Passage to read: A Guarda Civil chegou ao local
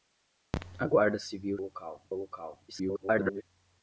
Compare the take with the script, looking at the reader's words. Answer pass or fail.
fail